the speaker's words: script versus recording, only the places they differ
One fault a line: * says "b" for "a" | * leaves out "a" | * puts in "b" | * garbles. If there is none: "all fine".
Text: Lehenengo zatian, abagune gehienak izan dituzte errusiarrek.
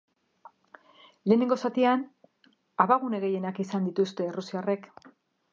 all fine